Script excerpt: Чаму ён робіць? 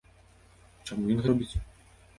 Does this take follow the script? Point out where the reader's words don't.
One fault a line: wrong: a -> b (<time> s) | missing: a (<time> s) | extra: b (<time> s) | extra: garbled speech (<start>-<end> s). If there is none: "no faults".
no faults